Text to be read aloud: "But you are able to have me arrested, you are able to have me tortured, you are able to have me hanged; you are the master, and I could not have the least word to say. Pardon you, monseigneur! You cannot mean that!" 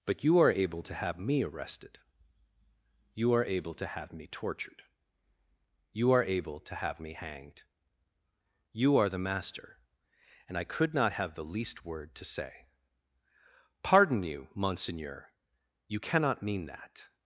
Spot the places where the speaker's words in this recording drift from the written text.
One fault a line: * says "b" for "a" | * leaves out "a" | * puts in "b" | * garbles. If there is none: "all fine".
all fine